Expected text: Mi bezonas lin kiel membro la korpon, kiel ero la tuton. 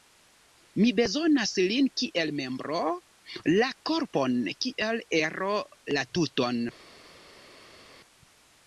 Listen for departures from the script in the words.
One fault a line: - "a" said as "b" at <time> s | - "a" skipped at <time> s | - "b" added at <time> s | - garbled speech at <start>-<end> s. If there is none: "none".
none